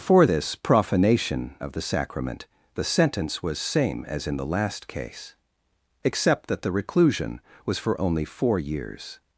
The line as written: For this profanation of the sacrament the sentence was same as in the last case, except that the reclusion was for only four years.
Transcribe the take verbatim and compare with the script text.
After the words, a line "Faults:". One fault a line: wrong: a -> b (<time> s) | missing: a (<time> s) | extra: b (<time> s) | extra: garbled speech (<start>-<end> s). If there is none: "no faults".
For this profanation of the sacrament the sentence was same as in the last case, except that the reclusion was for only four years.
Faults:
no faults